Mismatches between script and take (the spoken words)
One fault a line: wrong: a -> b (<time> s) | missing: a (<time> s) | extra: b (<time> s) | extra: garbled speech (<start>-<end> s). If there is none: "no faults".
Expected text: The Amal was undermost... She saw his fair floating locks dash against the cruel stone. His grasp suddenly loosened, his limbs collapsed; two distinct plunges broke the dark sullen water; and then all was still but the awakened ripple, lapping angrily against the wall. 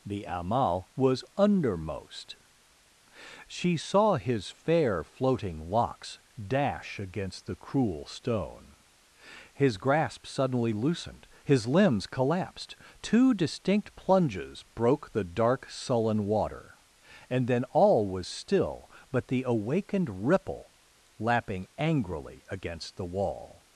no faults